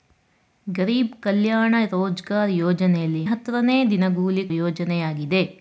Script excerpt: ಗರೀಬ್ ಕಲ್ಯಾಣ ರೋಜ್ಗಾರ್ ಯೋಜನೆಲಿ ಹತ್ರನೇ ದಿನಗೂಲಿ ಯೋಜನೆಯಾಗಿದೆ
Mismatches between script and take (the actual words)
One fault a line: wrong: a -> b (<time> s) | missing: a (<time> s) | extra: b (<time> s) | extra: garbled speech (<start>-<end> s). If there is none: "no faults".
no faults